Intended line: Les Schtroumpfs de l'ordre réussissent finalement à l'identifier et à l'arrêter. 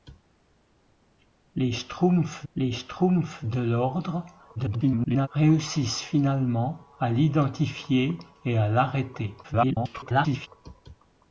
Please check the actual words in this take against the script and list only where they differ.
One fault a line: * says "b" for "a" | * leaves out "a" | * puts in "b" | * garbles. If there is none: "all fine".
* puts in "les Schtroumpfs"
* garbles
* garbles